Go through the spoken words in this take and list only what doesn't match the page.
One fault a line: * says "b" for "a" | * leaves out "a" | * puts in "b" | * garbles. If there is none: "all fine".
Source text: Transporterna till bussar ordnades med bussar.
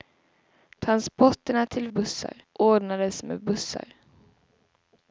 all fine